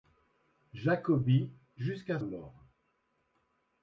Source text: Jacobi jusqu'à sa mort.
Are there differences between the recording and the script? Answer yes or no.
yes